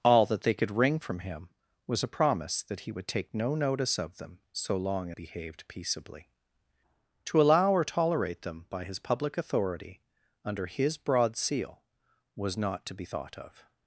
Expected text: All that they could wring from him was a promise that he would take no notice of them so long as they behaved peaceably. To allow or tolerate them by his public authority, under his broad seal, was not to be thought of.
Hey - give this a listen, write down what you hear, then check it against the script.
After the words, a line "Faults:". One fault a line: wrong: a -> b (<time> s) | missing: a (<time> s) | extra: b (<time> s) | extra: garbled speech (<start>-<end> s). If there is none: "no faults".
All that they could wring from him was a promise that he would take no notice of them so long behaved peaceably. To allow or tolerate them by his public authority, under his broad seal, was not to be thought of.
Faults:
missing: as they (5.1 s)